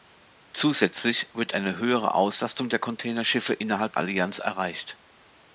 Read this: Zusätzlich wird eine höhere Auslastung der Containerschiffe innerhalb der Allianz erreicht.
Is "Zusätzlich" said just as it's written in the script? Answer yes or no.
yes